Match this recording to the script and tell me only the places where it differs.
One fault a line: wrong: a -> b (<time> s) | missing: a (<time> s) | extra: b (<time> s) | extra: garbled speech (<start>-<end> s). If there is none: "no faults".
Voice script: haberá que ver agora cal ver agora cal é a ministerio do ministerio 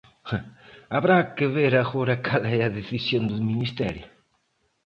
missing: ver agora cal (2.4 s)
wrong: ministerio -> decisión (2.8 s)